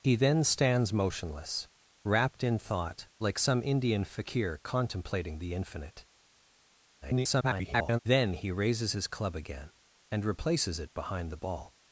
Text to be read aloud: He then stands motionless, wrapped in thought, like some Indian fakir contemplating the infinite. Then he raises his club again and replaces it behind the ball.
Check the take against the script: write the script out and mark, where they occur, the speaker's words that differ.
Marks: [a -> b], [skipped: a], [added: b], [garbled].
He then stands motionless, wrapped in thought, like some Indian fakir contemplating the infinite. [garbled] Then he raises his club again and replaces it behind the ball.